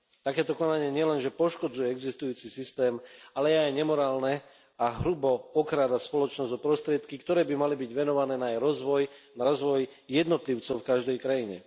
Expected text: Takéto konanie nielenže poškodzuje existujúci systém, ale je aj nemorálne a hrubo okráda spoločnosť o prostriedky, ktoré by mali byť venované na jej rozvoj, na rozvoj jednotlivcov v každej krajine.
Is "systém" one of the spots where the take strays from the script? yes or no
no